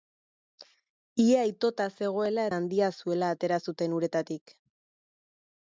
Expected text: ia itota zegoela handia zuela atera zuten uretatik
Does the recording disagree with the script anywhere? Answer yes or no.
no